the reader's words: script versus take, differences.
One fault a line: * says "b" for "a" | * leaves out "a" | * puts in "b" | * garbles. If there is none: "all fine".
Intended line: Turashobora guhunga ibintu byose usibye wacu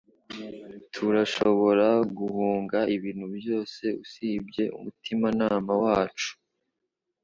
* puts in "umutimanama"